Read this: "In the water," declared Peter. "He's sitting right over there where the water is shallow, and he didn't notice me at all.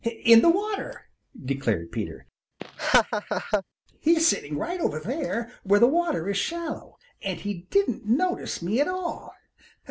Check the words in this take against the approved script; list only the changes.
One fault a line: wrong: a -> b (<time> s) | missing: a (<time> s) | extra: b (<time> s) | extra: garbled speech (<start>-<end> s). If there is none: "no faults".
no faults